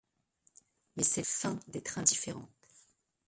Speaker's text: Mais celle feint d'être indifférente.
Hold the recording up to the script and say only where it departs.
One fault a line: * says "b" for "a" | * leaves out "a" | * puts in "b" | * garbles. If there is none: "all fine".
all fine